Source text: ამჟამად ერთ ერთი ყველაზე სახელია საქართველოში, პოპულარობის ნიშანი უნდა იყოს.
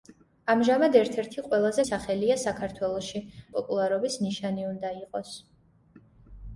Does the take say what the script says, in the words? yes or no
yes